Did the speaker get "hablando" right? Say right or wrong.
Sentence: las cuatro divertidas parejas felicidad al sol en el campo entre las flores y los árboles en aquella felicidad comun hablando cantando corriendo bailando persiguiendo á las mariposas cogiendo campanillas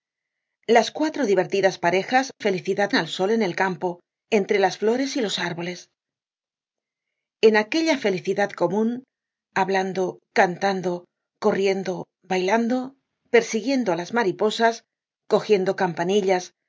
right